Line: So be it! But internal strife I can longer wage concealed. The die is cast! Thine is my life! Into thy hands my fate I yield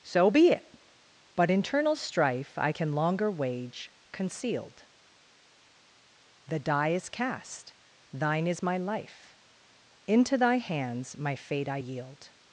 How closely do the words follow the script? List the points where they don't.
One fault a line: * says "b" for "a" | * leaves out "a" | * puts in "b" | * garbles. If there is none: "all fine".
all fine